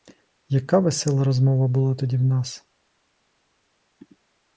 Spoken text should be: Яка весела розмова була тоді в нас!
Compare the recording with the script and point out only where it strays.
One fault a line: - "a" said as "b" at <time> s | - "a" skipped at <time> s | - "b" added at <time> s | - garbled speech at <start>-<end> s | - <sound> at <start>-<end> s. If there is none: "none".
none